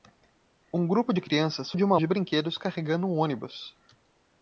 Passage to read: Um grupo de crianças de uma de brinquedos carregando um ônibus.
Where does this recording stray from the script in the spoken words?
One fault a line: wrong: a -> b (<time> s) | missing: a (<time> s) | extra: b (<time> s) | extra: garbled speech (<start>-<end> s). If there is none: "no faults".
no faults